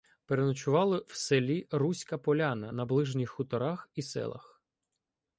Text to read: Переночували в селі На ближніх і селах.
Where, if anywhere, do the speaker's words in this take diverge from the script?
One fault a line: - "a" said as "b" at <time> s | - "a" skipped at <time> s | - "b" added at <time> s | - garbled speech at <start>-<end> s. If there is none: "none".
- "Руська Поляна" added at 1.7 s
- "хуторах" added at 3.3 s